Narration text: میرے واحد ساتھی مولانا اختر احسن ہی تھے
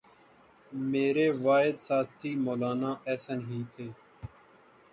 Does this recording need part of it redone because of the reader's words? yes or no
yes